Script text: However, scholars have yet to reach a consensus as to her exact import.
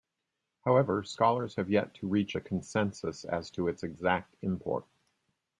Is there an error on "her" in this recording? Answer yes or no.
yes